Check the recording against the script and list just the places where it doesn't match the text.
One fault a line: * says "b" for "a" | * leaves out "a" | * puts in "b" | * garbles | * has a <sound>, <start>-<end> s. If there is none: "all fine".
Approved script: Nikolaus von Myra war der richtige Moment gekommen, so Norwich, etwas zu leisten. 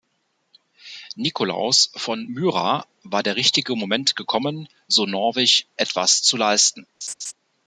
* has a laugh, 7.0-7.3 s